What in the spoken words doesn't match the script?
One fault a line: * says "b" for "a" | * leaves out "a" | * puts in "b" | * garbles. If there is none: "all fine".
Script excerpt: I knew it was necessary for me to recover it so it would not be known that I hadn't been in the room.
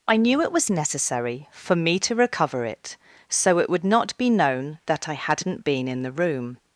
all fine